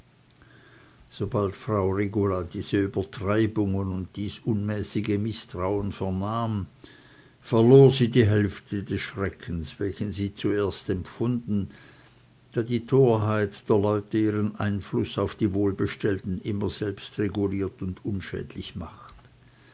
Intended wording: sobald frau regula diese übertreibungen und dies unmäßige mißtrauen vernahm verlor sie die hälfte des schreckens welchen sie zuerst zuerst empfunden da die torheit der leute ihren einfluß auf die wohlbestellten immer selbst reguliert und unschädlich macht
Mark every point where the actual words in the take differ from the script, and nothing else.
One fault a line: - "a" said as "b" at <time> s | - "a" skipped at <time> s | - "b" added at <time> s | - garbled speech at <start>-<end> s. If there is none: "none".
- "zuerst" skipped at 10.9 s